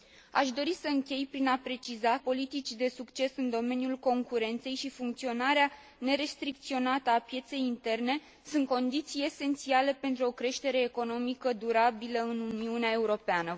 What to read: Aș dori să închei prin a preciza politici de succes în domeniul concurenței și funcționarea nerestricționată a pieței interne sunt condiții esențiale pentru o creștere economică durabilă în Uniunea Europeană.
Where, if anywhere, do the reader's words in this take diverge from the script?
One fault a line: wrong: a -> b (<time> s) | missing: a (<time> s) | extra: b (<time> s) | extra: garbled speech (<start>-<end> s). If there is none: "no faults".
no faults